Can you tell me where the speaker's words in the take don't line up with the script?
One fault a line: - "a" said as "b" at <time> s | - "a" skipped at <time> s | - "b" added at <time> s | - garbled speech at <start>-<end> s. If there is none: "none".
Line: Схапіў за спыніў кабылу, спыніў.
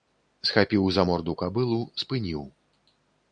- "спыніў" said as "морду" at 1.1 s